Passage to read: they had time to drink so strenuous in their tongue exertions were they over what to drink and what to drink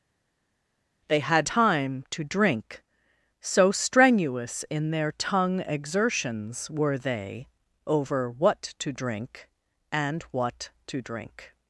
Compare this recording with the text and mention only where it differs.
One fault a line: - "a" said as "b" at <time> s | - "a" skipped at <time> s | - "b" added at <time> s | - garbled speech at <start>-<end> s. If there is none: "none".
none